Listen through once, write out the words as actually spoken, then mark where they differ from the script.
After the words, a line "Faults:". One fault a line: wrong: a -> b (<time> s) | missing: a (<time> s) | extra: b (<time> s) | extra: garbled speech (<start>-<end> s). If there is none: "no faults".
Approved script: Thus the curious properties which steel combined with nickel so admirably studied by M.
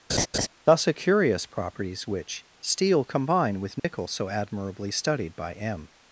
Thus a curious properties which steel combine with nickel so admirably studied by M.
Faults:
wrong: the -> a (0.9 s)
wrong: combined -> combine (3.0 s)